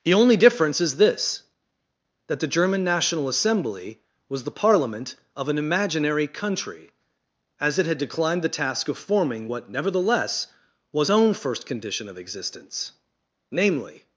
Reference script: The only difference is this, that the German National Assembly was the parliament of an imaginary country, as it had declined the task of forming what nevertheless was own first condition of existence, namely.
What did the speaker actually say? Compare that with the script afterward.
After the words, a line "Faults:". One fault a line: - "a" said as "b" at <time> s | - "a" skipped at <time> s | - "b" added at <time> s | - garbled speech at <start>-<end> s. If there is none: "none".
The only difference is this, that the German National Assembly was the parliament of an imaginary country, as it had declined the task of forming what nevertheless was own first condition of existence, namely.
Faults:
none